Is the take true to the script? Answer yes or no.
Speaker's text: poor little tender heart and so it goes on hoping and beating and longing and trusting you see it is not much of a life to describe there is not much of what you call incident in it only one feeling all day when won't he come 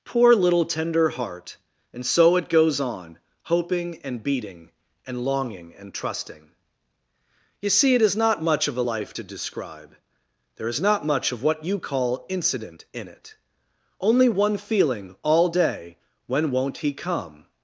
yes